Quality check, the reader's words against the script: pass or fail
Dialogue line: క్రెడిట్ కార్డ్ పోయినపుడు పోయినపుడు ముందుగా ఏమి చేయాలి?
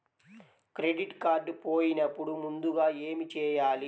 fail